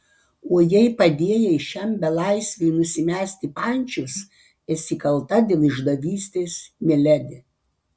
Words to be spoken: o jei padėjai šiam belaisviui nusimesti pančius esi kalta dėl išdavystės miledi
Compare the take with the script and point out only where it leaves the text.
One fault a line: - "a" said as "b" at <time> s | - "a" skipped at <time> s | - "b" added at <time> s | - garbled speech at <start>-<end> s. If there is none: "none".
none